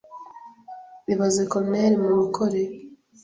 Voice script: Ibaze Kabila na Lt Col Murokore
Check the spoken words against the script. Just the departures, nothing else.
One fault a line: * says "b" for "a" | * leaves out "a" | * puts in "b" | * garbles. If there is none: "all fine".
* leaves out "Kabila na Lt"